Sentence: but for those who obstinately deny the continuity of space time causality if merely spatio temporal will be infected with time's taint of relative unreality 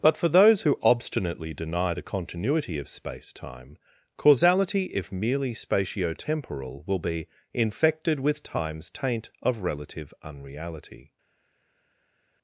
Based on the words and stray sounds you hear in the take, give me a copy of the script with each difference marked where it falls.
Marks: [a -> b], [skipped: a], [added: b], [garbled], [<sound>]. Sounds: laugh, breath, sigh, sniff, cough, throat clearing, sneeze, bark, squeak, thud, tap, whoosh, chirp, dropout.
but for those who obstinately deny the continuity of space time causality if merely spatio temporal will be infected with time's taint of relative unreality